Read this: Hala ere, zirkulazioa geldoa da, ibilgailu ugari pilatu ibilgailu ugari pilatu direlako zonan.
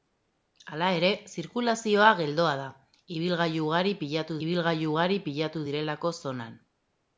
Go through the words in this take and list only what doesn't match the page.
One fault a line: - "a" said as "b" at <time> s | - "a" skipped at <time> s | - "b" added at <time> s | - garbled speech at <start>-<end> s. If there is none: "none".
none